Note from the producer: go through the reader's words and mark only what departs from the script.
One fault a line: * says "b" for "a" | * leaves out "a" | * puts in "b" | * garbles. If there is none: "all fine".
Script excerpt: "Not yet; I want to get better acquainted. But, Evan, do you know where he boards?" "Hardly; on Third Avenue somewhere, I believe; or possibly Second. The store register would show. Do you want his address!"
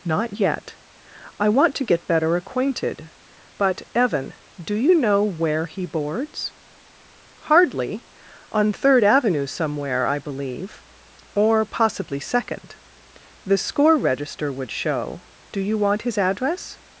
* says "score" for "store"